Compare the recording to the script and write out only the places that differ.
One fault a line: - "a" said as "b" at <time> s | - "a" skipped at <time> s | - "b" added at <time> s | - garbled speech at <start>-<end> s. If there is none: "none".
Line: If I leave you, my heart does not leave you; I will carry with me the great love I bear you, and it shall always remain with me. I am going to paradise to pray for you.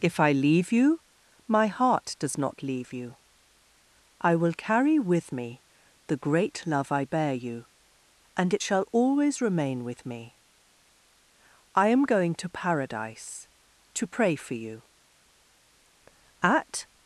- "At" added at 16.4 s